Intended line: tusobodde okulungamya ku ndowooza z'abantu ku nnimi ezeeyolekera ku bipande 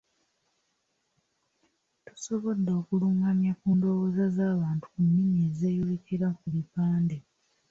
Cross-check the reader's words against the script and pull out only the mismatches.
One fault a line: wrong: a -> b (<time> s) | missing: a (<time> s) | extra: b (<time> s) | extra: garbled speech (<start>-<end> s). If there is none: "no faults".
no faults